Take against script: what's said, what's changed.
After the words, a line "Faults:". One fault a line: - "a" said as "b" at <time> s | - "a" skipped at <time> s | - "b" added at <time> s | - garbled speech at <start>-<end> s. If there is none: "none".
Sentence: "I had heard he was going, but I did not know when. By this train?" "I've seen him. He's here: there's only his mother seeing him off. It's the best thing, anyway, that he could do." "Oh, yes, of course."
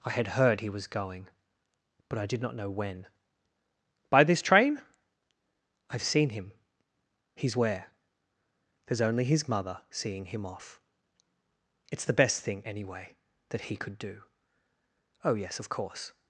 "I had heard he was going, but I did not know when. By this train?" "I've seen him. He's where: there's only his mother seeing him off. It's the best thing, anyway, that he could do." "Oh, yes, of course."
Faults:
- "here" said as "where" at 7.5 s